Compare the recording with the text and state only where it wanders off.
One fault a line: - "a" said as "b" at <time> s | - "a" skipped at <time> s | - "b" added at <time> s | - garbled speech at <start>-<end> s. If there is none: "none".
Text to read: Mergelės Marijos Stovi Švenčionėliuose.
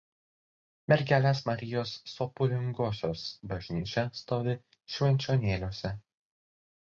- "Sopulingosios bažnyčia" added at 2.1 s